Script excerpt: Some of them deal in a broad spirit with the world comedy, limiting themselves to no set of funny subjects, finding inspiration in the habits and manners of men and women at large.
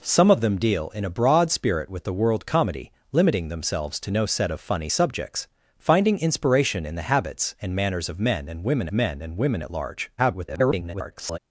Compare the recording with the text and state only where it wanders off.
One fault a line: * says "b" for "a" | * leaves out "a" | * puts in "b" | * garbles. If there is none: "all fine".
* puts in "men and women"
* garbles